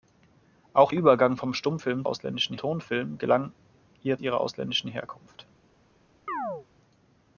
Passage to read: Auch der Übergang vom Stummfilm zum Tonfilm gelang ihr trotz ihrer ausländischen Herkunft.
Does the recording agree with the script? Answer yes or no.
no